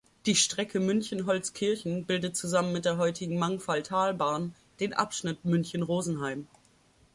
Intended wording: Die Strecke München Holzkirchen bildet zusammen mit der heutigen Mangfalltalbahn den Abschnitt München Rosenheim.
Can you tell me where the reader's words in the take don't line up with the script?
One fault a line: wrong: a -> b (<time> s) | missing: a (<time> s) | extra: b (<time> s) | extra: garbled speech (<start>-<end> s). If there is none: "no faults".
no faults